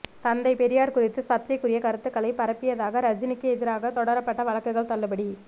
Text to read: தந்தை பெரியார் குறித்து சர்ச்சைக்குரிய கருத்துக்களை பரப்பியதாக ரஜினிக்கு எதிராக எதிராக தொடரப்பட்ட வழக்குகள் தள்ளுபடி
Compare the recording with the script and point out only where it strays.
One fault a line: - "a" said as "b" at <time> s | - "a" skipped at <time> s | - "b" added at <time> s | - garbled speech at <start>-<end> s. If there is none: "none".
- "எதிராக" skipped at 3.9 s